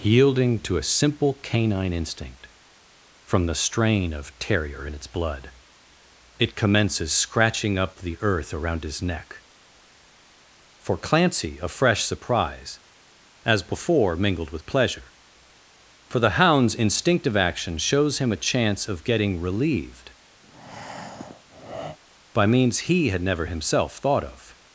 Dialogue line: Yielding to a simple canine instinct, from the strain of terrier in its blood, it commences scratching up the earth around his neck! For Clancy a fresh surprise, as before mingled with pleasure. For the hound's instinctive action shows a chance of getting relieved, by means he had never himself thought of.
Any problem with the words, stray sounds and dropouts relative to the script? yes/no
yes